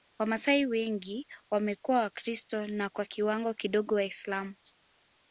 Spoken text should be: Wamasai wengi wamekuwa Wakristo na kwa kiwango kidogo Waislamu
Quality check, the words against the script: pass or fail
pass